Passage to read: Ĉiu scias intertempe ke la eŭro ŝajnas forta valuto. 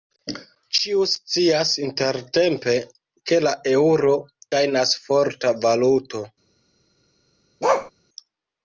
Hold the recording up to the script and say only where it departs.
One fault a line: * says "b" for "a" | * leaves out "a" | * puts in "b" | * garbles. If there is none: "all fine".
all fine